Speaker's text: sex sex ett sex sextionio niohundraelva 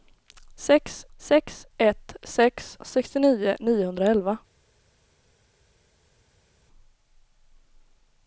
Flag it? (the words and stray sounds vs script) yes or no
no